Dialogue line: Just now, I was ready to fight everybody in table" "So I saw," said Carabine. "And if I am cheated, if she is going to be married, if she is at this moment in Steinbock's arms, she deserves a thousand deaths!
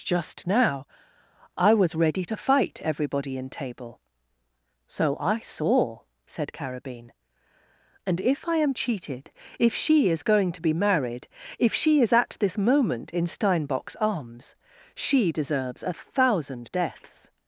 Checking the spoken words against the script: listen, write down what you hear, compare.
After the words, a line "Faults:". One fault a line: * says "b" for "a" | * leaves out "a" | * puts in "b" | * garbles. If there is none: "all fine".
Just now, I was ready to fight everybody in table" "So I saw," said Carabine. "And if I am cheated, if she is going to be married, if she is at this moment in Steinbock's arms, she deserves a thousand deaths!
Faults:
all fine